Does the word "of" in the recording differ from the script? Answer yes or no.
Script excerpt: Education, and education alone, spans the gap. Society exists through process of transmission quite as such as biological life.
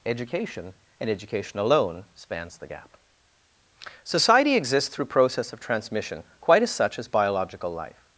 no